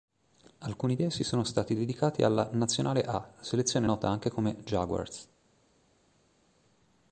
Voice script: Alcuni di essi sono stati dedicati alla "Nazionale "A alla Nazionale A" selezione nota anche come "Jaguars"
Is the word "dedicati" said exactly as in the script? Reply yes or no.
yes